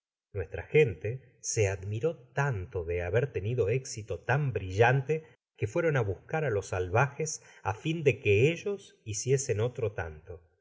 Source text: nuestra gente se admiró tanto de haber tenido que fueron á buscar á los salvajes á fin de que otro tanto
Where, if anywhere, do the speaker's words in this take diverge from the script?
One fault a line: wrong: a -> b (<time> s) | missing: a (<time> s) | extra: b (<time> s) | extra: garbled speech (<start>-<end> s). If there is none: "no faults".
extra: éxito tan brillante (3.7 s)
extra: ellos hiciesen (8.5 s)